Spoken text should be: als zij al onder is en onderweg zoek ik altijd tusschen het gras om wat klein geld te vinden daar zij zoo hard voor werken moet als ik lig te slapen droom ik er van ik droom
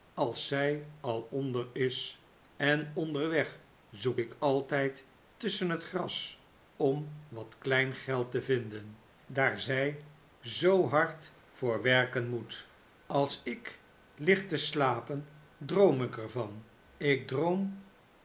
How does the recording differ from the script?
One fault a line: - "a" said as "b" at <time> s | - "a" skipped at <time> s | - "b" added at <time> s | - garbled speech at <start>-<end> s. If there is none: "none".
none